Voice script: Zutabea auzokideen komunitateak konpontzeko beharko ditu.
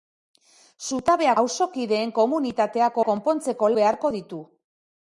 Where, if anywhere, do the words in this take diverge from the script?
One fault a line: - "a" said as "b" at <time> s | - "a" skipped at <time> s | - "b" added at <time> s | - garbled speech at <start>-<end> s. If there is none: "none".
none